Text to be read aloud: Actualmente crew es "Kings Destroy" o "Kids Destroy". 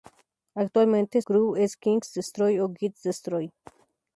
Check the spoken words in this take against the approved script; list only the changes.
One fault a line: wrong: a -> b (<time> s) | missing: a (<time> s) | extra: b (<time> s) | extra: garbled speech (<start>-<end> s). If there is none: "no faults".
no faults